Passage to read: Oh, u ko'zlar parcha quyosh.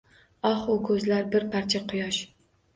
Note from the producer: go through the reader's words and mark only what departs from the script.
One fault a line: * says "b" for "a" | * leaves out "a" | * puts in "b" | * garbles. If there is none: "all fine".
* puts in "bir"